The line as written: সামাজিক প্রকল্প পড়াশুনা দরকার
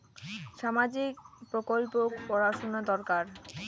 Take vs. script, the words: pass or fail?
pass